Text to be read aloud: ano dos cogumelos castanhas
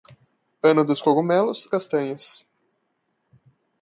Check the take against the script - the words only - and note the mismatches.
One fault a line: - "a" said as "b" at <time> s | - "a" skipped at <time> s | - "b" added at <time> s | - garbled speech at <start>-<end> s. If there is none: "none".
none